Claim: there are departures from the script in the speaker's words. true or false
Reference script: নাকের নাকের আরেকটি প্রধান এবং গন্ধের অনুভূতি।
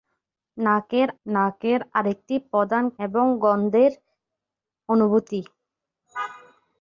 false